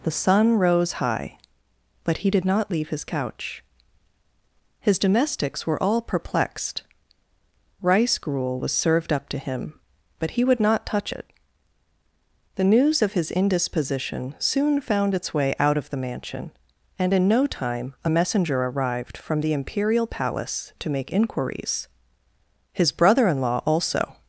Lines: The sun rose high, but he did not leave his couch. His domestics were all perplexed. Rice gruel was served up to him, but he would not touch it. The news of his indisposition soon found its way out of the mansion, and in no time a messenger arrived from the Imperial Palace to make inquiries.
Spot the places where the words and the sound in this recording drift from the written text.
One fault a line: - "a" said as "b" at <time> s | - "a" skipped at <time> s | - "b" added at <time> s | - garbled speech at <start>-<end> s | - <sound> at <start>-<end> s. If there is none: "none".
- "His brother in law also" added at 22.7 s